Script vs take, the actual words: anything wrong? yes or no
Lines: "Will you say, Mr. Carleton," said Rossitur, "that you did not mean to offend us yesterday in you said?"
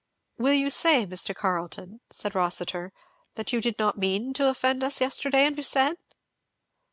no